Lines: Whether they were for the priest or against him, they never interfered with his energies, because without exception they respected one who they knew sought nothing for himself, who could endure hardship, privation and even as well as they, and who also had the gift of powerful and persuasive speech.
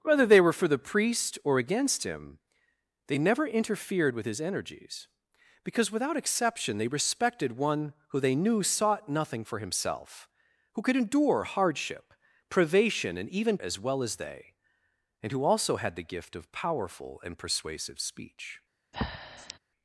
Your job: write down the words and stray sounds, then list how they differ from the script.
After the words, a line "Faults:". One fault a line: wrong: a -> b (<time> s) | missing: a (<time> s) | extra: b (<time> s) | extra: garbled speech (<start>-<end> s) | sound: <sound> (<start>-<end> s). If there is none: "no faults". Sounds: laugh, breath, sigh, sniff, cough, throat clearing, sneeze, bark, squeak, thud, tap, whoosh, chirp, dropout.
Whether they were for the priest or against him, they never interfered with his energies, because without exception they respected one who they knew sought nothing for himself, who could endure hardship, privation and even as well as they, and who also had the gift of powerful and persuasive speech.
Faults:
sound: breath (18.9-19.6 s)